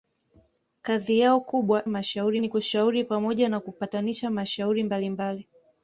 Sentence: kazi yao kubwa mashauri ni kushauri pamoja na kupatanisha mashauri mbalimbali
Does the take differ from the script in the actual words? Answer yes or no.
no